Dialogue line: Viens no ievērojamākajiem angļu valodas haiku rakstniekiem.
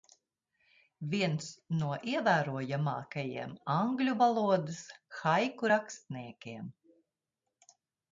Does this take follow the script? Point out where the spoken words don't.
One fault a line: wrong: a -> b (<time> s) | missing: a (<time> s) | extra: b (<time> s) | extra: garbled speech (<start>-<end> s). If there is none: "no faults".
no faults